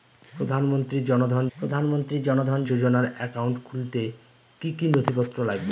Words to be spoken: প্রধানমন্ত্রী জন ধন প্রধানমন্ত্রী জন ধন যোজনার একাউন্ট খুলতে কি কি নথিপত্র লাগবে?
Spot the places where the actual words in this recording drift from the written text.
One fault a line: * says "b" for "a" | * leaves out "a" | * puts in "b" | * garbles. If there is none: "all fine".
all fine